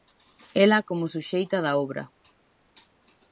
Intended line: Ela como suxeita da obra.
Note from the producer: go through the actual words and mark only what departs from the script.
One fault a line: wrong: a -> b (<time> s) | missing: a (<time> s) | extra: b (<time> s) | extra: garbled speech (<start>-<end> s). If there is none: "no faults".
no faults